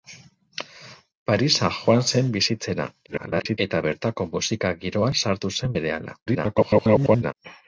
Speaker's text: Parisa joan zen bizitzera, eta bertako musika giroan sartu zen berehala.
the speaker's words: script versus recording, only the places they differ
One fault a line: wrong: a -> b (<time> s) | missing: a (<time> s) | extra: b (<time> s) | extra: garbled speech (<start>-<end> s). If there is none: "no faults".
extra: garbled speech (3.1-3.6 s)
extra: garbled speech (6.3-7.3 s)